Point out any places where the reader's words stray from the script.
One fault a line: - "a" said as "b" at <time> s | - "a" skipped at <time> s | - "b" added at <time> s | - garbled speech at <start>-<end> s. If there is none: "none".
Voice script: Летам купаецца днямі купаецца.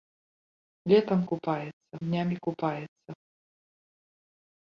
none